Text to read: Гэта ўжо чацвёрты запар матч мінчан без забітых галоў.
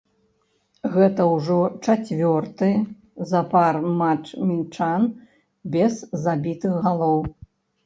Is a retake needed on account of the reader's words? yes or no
no